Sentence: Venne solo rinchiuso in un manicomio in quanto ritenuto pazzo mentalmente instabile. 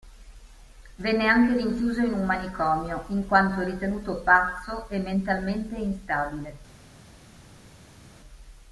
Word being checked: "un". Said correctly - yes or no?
yes